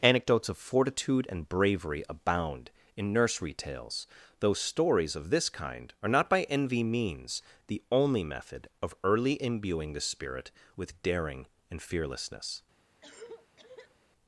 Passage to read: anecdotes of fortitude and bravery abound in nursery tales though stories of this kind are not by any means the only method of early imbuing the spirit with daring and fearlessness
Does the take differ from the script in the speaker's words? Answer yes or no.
yes